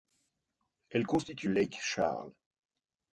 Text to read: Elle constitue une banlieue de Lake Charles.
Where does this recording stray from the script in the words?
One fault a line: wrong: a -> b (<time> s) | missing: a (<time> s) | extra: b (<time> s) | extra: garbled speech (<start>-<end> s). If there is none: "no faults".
missing: une banlieue de (1.5 s)